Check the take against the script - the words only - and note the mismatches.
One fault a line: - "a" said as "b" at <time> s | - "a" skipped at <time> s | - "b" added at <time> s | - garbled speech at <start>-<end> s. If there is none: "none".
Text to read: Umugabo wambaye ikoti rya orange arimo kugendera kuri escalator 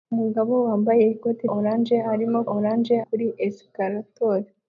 - "rya" skipped at 1.4 s
- "kugendera" said as "orange" at 2.5 s